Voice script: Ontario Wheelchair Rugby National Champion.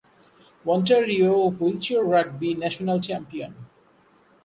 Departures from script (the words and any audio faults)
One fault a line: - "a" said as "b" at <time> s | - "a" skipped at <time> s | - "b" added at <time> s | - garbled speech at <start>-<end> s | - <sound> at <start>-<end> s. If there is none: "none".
none